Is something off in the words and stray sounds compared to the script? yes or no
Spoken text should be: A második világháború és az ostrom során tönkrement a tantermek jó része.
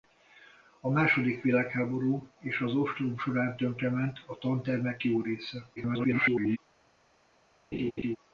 yes